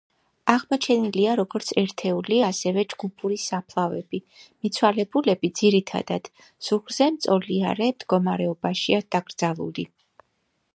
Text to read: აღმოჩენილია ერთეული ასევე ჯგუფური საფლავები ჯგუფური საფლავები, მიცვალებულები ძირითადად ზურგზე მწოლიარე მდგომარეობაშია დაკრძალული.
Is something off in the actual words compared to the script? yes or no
yes